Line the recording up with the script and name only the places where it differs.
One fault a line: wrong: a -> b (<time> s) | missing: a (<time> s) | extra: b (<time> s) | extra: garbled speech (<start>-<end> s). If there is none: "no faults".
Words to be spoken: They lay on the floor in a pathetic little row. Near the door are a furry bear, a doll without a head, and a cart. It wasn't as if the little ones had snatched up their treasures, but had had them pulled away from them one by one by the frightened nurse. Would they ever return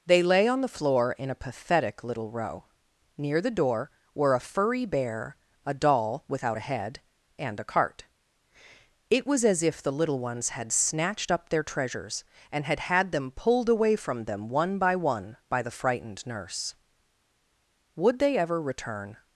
wrong: are -> were (4.2 s)
wrong: wasn't -> was (9.3 s)
wrong: but -> and (12.5 s)